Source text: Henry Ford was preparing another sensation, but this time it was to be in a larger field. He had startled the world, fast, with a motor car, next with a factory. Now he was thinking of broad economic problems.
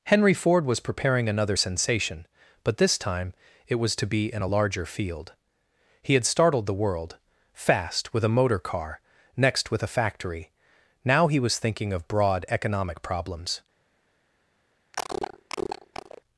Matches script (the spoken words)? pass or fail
pass